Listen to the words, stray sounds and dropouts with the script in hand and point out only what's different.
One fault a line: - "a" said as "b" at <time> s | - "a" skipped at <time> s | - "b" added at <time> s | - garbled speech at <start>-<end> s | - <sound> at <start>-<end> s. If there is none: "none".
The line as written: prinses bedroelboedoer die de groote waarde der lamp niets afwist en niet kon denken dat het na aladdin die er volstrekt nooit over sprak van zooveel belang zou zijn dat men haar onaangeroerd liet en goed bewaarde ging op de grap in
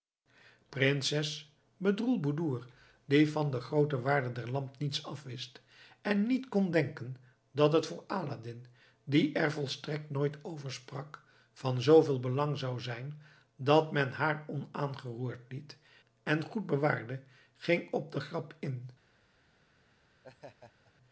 - "van" added at 3.3 s
- "na" said as "voor" at 7.9 s
- laugh at 20.2-20.9 s